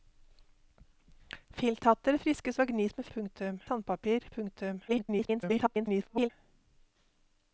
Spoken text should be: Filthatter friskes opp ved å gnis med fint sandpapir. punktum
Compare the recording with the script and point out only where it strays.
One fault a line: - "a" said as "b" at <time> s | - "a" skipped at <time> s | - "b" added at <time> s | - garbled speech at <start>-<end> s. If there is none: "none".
- "opp" skipped at 2.6 s
- "fint" said as "punktum" at 3.2 s
- garbled speech at 4.9-6.3 s